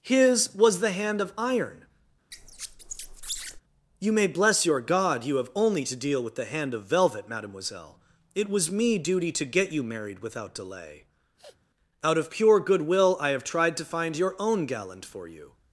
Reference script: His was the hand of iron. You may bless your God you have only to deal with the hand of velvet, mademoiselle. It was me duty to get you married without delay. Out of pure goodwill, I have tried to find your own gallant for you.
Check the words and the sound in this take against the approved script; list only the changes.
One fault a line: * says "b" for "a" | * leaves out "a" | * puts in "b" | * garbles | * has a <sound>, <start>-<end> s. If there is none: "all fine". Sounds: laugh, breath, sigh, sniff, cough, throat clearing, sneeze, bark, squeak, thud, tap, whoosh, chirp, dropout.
* has a squeak, 2.3-3.6 s
* has a sniff, 11.4-11.7 s